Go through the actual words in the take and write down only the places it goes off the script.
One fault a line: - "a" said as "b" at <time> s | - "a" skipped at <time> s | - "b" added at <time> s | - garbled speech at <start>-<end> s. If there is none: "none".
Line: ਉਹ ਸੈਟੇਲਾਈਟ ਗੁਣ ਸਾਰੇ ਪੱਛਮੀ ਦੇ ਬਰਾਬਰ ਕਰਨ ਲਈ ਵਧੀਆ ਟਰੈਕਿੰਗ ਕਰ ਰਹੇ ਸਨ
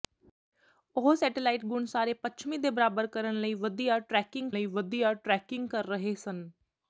- "ਲਈ ਵਧੀਆ ਟਰੈਕਿੰਗ" added at 4.5 s